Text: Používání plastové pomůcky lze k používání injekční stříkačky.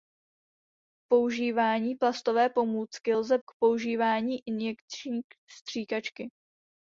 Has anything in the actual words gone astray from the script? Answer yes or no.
no